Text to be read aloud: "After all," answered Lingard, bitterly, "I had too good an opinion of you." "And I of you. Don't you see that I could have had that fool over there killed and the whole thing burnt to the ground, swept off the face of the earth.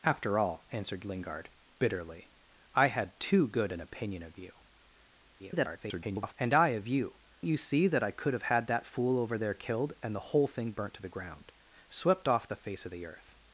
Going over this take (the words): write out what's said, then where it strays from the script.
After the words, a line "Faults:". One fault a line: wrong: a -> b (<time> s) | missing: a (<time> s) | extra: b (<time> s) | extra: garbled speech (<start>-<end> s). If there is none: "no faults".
"After all," answered Lingard, bitterly, "I had too good an opinion of you." [garbled] "And I of you. You see that I could have had that fool over there killed and the whole thing burnt to the ground, swept off the face of the earth.
Faults:
extra: garbled speech (5.4-6.3 s)
missing: Don't (7.2 s)